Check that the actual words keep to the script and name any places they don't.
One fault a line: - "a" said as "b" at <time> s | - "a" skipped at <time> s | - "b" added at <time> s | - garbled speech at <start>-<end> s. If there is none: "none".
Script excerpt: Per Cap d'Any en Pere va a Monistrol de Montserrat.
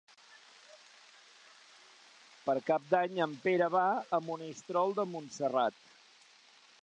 none